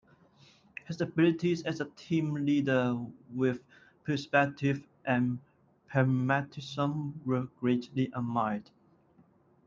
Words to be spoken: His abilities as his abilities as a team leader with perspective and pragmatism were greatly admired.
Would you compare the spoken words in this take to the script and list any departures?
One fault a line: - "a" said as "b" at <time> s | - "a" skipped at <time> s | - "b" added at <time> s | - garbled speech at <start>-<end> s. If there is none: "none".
- "his abilities as" skipped at 1.8 s